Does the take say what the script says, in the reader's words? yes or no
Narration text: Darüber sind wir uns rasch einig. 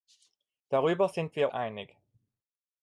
no